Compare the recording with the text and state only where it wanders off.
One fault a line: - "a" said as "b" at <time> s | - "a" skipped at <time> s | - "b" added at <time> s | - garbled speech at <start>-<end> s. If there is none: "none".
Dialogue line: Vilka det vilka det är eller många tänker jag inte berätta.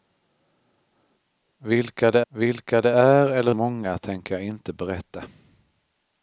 none